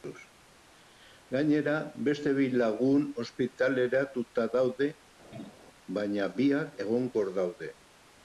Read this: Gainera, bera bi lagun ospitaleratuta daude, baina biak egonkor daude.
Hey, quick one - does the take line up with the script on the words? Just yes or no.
no